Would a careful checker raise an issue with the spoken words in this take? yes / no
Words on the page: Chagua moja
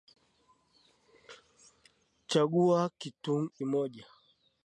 no